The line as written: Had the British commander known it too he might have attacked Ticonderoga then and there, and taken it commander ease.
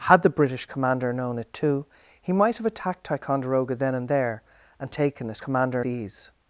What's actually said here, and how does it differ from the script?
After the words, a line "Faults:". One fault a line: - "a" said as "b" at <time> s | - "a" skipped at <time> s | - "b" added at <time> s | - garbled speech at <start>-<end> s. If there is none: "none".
Had the British commander known it too he might have attacked Ticonderoga then and there, and taken it commander ease.
Faults:
none